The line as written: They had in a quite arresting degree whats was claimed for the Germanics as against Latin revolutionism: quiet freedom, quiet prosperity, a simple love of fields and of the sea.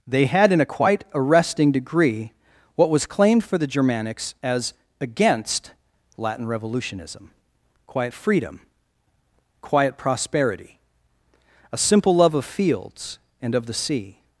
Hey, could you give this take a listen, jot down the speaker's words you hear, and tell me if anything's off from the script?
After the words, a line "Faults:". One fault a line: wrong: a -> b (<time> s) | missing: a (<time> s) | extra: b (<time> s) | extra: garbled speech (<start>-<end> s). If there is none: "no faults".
They had in a quite arresting degree what was claimed for the Germanics as against Latin revolutionism: quiet freedom, quiet prosperity, a simple love of fields and of the sea.
Faults:
wrong: whats -> what (2.8 s)